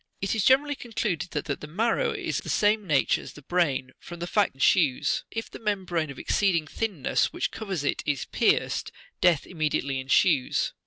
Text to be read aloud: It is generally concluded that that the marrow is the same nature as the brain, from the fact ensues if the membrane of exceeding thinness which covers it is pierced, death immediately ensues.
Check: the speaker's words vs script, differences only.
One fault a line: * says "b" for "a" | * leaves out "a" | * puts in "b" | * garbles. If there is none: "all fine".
all fine